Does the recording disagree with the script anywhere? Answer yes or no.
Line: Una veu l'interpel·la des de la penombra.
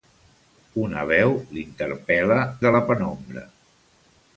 yes